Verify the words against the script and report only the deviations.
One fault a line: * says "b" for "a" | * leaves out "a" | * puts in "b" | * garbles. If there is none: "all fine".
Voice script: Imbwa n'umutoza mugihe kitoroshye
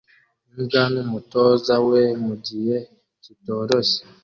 * puts in "we"